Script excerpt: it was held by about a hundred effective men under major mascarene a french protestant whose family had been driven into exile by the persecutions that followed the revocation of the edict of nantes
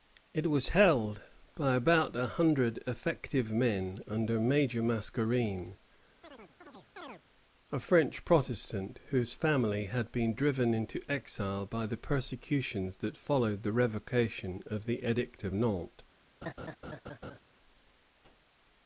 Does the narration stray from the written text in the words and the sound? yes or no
yes